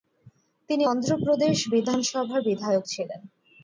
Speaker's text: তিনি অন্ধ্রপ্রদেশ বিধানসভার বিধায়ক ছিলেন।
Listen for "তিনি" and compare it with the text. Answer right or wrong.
right